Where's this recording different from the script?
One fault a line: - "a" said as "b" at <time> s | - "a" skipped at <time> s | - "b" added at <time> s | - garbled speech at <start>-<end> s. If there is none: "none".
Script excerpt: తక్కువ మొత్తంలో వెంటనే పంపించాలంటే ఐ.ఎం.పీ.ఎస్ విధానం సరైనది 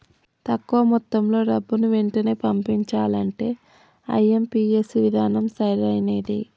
- "డబ్బుని" added at 1.4 s